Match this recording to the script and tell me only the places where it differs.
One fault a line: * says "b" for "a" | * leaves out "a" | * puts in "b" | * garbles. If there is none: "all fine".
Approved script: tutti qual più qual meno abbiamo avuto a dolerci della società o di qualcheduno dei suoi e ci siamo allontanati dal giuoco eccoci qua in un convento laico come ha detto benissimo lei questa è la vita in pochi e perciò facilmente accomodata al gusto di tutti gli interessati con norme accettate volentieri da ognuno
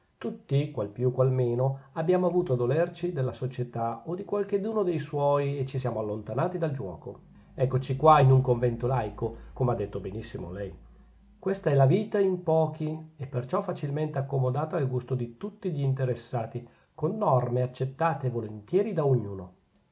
all fine